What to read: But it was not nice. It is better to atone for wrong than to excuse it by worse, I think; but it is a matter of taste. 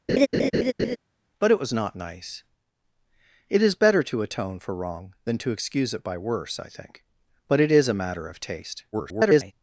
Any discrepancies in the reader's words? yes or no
yes